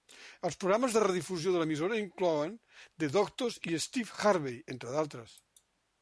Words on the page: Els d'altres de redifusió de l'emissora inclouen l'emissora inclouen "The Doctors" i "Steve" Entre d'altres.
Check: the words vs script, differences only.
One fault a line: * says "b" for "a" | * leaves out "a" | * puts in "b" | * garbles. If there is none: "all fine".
* says "programes" for "d'altres"
* leaves out "l'emissora inclouen"
* puts in "Harvey"